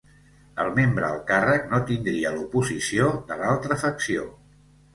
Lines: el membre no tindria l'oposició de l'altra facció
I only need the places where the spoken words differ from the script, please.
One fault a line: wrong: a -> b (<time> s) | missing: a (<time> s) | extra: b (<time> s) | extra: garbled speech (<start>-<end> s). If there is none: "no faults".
extra: al càrrec (1.1 s)